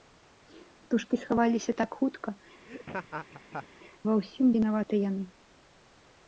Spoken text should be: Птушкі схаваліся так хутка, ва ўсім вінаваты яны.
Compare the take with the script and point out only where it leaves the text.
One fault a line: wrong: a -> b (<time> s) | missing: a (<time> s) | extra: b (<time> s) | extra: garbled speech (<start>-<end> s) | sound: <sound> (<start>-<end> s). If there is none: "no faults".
sound: laugh (2.7-3.7 s)